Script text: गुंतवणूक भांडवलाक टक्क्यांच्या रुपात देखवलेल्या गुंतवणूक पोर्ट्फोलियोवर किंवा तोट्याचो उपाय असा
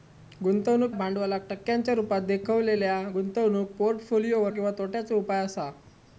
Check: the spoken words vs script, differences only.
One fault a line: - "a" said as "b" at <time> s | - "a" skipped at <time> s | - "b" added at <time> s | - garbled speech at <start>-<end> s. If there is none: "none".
none